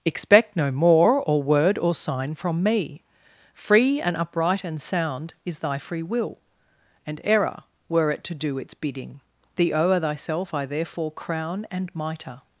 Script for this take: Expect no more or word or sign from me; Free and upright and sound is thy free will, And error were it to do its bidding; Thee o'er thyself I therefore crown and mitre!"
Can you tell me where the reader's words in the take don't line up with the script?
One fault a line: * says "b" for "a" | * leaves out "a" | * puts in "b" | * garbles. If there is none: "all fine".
all fine